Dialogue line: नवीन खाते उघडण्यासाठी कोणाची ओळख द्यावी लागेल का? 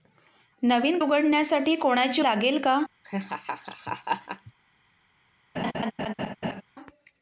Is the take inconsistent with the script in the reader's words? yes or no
yes